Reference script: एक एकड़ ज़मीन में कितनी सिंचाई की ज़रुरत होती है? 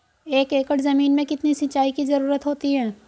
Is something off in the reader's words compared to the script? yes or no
no